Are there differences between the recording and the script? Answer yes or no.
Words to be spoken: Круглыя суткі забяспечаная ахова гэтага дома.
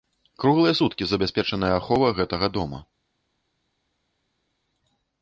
no